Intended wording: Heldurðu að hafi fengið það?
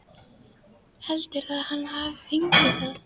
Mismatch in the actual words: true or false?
true